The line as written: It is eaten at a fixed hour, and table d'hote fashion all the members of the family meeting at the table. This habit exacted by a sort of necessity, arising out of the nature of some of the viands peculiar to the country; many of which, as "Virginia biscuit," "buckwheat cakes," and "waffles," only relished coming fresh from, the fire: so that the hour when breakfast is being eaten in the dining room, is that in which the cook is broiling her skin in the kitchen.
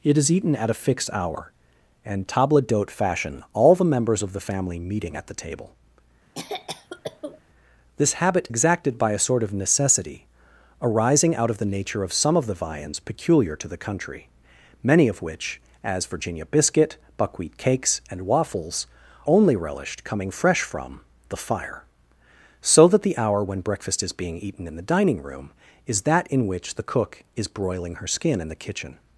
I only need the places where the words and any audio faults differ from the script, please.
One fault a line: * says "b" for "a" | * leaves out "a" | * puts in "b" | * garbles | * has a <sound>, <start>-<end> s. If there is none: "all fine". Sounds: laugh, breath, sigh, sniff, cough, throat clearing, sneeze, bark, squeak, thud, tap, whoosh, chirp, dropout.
* has a cough, 6.4-7.4 s